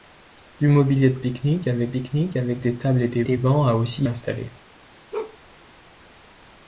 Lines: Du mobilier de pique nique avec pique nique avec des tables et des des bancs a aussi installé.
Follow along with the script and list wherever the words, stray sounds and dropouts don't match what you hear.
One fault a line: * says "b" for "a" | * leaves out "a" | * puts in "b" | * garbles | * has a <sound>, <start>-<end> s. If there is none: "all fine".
* has a bark, 5.1-5.4 s